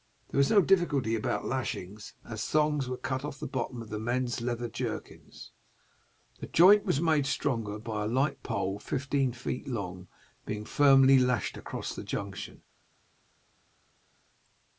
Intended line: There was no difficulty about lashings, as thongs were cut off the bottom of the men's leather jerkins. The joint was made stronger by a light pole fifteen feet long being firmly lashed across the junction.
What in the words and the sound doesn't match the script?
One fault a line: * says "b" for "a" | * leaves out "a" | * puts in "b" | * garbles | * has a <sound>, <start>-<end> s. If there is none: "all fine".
all fine